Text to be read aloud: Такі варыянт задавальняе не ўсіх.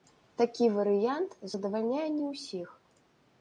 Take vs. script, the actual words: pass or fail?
pass